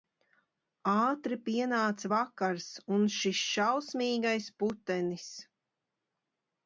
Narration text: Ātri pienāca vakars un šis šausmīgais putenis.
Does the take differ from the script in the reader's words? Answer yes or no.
no